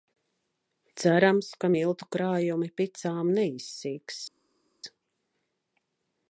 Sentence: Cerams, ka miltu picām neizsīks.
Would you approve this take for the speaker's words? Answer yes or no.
no